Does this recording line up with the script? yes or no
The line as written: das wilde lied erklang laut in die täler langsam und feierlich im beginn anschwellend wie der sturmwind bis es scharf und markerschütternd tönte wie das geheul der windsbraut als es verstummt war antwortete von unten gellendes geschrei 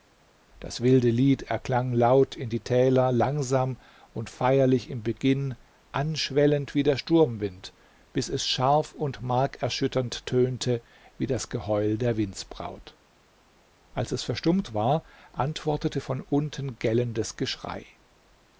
yes